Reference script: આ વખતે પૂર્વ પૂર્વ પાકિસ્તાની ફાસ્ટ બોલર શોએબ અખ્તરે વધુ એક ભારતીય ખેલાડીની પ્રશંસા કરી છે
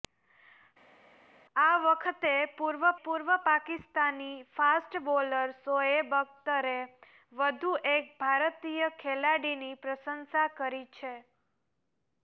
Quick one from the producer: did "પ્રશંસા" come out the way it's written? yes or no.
yes